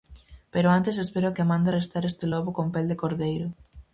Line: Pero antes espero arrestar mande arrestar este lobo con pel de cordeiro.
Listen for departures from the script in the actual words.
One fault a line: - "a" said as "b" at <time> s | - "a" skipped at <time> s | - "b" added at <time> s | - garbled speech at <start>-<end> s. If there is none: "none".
- "arrestar" said as "que" at 1.4 s